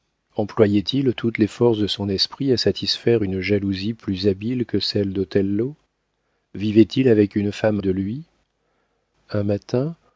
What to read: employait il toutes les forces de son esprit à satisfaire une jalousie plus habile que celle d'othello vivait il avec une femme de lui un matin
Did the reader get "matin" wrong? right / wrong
right